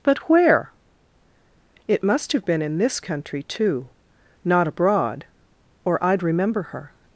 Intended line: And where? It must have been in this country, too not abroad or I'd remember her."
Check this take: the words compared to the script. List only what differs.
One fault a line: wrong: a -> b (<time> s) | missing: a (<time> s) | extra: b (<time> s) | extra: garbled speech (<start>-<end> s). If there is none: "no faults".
wrong: And -> But (0.0 s)